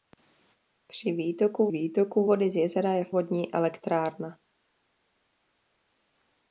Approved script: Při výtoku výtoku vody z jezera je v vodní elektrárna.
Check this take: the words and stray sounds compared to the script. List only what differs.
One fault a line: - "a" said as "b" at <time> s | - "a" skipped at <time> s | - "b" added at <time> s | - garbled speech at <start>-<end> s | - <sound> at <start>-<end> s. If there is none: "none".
none